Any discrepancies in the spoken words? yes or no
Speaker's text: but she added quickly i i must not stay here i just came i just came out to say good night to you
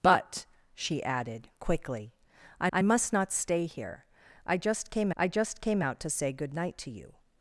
no